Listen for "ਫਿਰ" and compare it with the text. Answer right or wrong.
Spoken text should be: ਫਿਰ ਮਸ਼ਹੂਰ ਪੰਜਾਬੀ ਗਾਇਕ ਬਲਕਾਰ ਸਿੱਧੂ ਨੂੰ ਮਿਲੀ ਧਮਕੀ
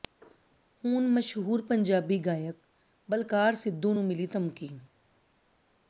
wrong